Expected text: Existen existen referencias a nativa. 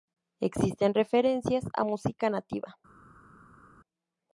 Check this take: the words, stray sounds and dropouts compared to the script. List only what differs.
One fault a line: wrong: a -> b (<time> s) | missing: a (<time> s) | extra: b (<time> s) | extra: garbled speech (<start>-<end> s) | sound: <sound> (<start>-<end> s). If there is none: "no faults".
missing: existen (0.9 s)
extra: música (1.8 s)